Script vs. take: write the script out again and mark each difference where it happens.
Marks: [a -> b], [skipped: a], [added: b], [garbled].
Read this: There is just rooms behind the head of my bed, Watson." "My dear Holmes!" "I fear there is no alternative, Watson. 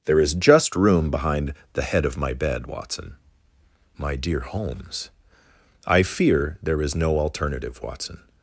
There is just [rooms -> room] behind the head of my bed, Watson." "My dear Holmes!" "I fear there is no alternative, Watson.